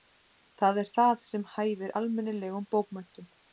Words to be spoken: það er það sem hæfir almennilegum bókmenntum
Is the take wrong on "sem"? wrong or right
right